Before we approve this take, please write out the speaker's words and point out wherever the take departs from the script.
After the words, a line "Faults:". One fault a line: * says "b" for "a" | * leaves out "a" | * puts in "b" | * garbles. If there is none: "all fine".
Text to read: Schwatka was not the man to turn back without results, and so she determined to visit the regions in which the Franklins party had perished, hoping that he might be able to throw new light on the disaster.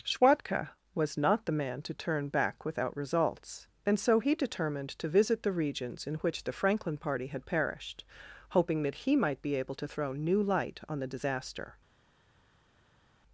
Schwatka was not the man to turn back without results, and so he determined to visit the regions in which the Franklin party had perished, hoping that he might be able to throw new light on the disaster.
Faults:
* says "he" for "she"
* says "Franklin" for "Franklins"